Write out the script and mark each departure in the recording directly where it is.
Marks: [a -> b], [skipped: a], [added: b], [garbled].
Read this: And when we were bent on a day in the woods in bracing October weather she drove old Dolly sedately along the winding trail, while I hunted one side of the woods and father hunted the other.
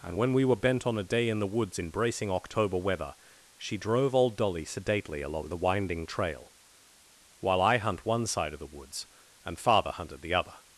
And when we were bent on a day in the woods in bracing October weather she drove old Dolly sedately along the winding trail, while I [hunted -> hunt] one side of the woods and father hunted the other.